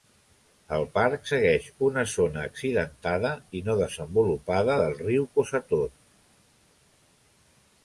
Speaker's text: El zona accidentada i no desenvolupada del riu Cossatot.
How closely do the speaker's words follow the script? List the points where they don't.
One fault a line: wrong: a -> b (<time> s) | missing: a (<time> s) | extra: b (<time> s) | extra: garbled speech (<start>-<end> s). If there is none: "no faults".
extra: parc segueix una (0.9 s)